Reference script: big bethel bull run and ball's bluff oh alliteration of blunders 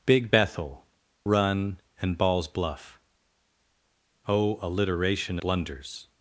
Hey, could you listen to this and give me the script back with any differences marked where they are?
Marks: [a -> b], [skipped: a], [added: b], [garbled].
big bethel [skipped: bull] run and ball's bluff oh alliteration [skipped: of] blunders